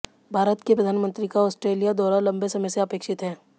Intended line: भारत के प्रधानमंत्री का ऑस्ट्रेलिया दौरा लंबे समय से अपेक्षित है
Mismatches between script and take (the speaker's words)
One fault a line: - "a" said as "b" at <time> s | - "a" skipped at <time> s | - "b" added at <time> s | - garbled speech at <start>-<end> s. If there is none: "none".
none